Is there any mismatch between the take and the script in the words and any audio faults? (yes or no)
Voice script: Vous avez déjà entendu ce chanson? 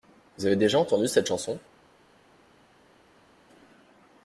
yes